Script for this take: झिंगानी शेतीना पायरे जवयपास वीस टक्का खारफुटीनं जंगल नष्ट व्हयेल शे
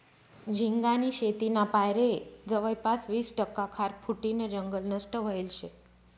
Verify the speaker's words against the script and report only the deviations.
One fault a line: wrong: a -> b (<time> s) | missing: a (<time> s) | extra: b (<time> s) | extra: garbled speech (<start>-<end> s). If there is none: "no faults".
no faults